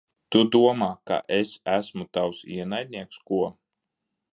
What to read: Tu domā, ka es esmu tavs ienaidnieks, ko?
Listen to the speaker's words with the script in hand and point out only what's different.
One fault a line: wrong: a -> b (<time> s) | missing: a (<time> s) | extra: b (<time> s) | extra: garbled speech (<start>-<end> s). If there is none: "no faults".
no faults